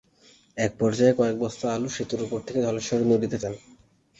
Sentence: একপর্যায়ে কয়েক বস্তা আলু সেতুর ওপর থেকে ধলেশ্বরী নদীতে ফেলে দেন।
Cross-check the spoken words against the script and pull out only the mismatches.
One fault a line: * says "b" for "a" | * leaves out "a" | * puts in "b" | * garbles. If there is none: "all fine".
* leaves out "ফেলে"